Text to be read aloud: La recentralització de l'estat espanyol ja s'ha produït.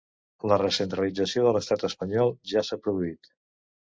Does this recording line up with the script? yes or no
yes